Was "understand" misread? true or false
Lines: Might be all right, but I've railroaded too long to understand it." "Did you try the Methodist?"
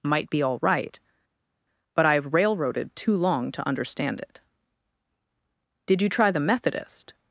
false